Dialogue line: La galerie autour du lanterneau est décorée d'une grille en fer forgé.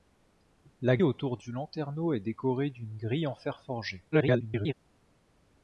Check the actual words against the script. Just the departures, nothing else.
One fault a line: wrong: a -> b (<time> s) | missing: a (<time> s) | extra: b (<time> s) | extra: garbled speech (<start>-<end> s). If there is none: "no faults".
missing: galerie (1.0 s)
extra: garbled speech (4.1-4.7 s)